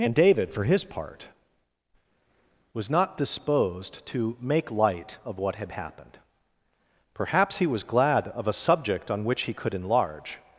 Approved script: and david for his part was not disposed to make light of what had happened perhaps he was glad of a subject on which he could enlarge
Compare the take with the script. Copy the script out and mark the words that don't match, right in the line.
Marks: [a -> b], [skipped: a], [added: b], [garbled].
and david for his part was not disposed to make light of what had happened perhaps he was glad of a subject on which he could enlarge